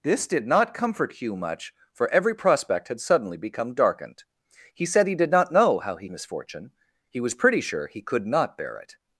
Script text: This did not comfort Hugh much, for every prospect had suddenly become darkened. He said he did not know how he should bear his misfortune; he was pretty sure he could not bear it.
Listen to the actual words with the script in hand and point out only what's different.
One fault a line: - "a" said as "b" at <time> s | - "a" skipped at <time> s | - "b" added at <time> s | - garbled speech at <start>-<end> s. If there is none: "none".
- "should bear his" skipped at 6.1 s